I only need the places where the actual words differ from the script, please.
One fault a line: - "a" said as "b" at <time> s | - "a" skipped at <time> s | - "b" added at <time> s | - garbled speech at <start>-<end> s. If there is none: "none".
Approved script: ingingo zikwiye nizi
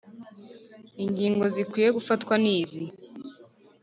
- "gufatwa" added at 1.9 s